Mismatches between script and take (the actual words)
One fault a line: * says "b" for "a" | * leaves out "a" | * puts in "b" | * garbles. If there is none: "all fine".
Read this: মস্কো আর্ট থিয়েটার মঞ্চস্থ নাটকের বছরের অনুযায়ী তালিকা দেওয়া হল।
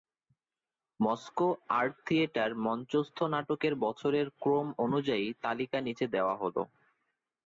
* puts in "ক্রম"
* puts in "নিচে"